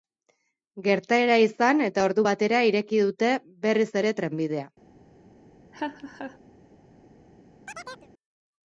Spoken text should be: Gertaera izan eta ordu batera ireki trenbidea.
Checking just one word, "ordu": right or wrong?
right